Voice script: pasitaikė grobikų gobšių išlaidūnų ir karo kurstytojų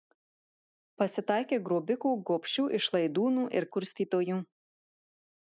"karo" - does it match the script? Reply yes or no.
no